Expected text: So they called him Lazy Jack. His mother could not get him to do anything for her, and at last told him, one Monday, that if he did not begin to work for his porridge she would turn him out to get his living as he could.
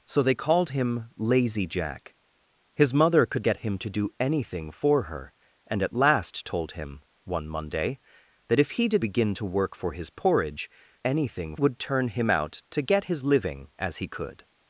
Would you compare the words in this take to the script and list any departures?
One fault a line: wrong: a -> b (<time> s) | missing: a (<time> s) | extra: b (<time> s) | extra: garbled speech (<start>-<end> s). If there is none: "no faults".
missing: not (3.5 s)
missing: not (9.0 s)
wrong: she -> anything (11.0 s)